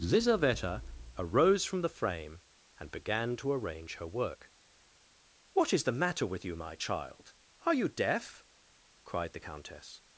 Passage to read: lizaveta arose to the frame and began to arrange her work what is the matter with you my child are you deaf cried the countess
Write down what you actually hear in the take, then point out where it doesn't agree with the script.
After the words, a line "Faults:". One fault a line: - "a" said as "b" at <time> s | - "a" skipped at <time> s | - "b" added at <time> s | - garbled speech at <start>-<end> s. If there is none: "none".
lizaveta arose from the frame and began to arrange her work what is the matter with you my child are you deaf cried the countess
Faults:
- "to" said as "from" at 1.6 s